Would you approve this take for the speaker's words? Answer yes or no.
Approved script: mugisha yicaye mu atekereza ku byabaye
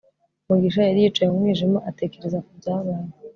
no